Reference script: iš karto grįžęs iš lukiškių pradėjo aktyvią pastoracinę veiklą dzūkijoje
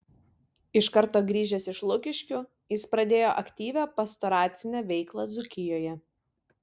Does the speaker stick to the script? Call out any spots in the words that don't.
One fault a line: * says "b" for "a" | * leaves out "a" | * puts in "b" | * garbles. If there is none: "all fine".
* puts in "jis"